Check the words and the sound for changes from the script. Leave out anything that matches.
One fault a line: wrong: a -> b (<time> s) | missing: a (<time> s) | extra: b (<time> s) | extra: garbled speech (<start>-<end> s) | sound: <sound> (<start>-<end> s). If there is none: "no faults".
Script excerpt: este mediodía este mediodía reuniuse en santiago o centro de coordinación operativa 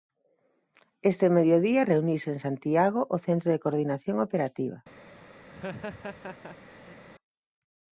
missing: este mediodía (1.8 s)
sound: laugh (5.5-7.0 s)